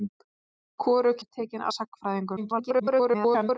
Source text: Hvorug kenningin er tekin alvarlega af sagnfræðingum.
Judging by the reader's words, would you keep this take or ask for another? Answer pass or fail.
fail